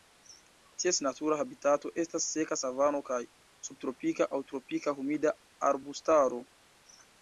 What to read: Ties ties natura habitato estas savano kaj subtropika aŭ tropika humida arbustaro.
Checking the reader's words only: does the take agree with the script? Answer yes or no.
no